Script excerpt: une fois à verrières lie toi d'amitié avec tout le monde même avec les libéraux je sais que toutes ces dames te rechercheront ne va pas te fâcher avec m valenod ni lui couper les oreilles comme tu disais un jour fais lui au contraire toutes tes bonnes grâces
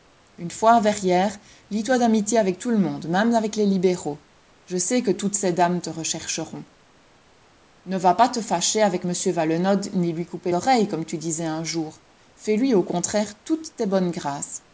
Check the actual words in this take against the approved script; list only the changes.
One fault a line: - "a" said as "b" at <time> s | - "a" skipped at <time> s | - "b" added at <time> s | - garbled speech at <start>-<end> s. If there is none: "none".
- "les" skipped at 10.5 s